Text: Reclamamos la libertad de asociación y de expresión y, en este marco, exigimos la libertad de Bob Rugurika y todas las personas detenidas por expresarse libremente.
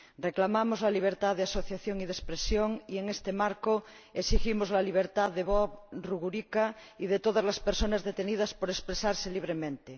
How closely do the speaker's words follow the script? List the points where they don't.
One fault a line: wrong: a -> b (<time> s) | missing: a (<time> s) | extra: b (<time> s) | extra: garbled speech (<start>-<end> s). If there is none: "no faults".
extra: de (7.1 s)